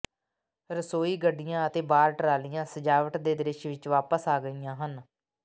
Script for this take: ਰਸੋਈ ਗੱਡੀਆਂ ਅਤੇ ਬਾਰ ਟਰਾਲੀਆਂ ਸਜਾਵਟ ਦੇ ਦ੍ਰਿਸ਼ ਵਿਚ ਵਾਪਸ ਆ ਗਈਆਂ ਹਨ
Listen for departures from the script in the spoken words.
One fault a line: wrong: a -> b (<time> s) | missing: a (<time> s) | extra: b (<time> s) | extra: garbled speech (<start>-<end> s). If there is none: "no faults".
no faults